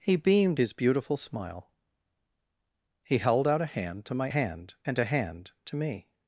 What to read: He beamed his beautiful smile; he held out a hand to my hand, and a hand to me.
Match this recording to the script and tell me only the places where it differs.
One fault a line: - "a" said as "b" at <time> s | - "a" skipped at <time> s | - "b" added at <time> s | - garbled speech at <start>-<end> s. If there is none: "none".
none